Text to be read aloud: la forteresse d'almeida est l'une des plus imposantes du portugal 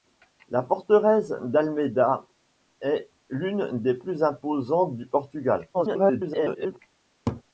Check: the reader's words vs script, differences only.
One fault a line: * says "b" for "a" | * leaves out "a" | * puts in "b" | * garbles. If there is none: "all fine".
* garbles